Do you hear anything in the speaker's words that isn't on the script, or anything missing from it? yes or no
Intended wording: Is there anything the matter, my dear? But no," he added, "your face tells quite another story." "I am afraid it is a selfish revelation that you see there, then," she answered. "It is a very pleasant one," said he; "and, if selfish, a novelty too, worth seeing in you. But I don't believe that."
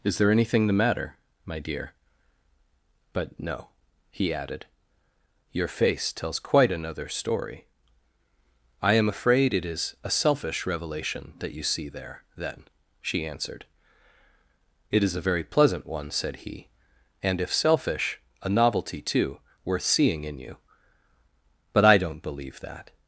no